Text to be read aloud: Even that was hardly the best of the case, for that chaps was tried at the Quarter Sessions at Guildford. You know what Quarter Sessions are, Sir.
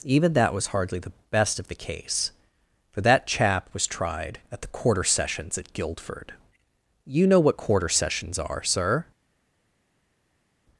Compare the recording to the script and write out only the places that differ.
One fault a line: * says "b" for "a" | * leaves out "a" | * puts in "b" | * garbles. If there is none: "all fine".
* says "chap" for "chaps"